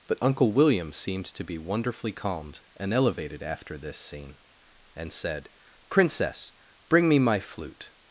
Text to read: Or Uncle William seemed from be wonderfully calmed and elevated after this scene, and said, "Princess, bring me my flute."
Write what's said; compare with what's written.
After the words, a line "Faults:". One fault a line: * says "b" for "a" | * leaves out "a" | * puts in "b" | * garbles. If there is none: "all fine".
But Uncle William seemed to be wonderfully calmed and elevated after this scene, and said, "Princess, bring me my flute."
Faults:
* says "But" for "Or"
* says "to" for "from"